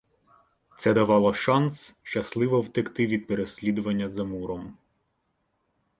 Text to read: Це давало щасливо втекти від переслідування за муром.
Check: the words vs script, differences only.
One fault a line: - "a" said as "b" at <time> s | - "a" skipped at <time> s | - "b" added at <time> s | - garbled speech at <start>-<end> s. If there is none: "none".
- "шанс" added at 1.3 s